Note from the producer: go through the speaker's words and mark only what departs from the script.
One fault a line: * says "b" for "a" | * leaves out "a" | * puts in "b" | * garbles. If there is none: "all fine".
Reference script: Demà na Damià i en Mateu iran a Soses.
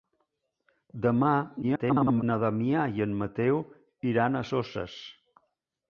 * garbles